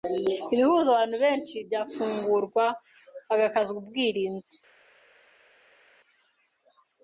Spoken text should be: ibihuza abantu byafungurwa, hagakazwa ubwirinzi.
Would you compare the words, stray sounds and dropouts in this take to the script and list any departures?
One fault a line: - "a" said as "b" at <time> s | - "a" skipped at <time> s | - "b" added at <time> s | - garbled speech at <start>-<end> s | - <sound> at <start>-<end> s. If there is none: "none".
- "benshi" added at 1.2 s